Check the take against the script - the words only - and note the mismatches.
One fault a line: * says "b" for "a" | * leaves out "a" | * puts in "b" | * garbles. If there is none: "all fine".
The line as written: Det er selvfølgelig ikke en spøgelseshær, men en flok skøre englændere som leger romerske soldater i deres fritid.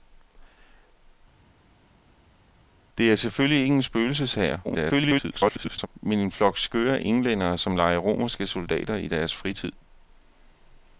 * garbles